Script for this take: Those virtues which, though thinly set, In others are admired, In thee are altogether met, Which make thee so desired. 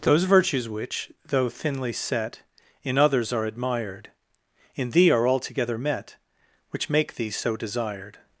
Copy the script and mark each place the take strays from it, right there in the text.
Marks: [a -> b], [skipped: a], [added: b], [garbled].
Those virtues which, though thinly set, In others are admired, In thee are altogether met, Which make thee so desired.